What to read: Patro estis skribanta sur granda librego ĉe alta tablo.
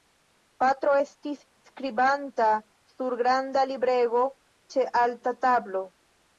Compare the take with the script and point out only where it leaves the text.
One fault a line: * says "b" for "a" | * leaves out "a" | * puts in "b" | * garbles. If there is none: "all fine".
all fine